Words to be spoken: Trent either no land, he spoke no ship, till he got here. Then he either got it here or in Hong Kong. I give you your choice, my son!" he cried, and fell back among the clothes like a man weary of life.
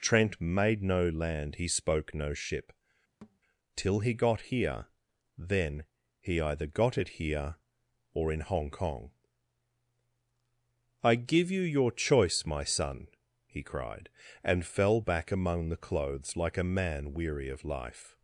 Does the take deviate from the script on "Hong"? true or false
false